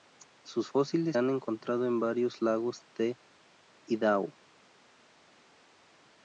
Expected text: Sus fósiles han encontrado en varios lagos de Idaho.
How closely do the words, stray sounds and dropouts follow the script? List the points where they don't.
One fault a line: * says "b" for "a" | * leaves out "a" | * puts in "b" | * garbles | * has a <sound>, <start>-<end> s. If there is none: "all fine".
all fine